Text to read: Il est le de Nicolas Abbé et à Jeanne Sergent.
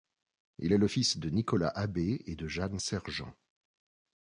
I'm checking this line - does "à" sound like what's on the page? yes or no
no